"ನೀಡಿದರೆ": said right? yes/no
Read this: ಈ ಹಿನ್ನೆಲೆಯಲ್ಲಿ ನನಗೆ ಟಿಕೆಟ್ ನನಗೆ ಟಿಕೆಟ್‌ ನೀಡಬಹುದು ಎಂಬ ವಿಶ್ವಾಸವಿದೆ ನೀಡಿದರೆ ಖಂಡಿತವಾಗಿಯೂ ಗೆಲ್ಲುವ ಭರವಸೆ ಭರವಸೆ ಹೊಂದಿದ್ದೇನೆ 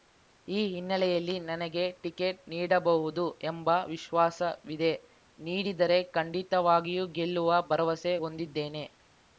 yes